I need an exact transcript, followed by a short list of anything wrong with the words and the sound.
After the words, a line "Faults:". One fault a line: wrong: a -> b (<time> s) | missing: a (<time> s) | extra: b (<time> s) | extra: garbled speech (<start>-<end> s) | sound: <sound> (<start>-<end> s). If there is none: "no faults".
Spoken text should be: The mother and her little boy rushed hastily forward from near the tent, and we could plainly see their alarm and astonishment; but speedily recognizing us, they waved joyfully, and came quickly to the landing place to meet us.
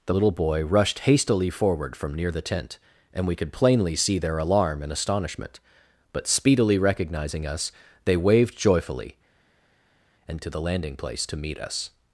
The little boy rushed hastily forward from near the tent, and we could plainly see their alarm and astonishment; but speedily recognizing us, they waved joyfully, and to the landing place to meet us.
Faults:
missing: mother and her (0.1 s)
missing: came quickly (10.4 s)